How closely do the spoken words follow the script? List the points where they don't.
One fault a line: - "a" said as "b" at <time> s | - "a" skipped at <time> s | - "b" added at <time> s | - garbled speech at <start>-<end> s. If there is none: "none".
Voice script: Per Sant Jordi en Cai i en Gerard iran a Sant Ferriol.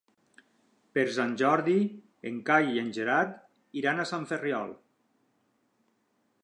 none